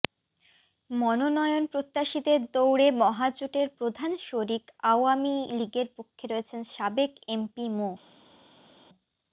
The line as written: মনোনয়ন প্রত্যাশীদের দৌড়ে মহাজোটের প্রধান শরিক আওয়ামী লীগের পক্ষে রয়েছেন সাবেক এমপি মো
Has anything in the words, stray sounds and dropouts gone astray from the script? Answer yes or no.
no